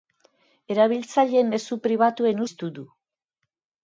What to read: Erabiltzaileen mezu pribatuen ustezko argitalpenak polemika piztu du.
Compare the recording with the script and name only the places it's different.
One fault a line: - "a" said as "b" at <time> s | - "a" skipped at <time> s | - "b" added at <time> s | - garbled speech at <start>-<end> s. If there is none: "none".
- "ustezko argitalpenak polemika" skipped at 2.4 s